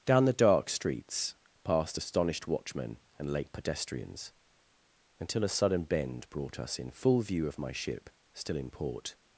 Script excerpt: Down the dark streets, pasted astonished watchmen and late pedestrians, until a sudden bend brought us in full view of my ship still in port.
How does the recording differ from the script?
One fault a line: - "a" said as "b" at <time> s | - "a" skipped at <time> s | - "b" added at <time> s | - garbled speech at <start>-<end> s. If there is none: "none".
- "pasted" said as "past" at 1.6 s